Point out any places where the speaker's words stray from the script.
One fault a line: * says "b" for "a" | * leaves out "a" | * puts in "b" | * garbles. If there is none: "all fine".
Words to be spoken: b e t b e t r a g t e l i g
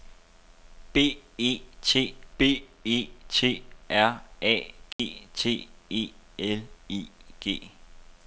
all fine